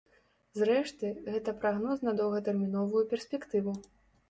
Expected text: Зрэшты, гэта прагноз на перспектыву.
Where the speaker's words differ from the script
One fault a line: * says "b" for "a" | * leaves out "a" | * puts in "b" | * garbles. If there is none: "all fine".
* puts in "доўгатэрміновую"